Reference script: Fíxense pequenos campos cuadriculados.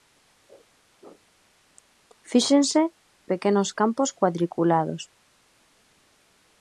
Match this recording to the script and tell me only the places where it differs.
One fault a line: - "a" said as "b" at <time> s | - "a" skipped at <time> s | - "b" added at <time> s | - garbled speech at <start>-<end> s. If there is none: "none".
none